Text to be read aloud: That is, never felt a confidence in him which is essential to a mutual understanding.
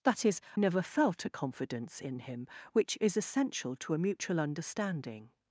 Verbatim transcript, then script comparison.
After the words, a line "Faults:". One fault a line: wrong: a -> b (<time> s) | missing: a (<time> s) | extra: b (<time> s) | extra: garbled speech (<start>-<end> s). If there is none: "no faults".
That is, never felt a confidence in him which is essential to a mutual understanding.
Faults:
no faults